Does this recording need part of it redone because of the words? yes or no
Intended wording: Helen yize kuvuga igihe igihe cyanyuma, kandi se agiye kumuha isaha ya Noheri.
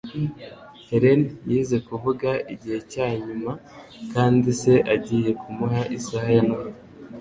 yes